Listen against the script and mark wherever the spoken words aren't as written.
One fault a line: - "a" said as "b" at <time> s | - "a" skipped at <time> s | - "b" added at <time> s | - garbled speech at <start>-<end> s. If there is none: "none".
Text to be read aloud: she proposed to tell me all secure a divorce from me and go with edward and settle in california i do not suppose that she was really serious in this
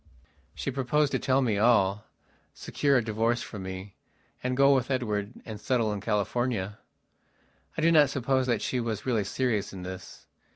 none